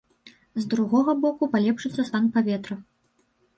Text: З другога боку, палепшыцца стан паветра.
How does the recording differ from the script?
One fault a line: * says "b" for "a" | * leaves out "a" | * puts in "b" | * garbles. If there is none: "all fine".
all fine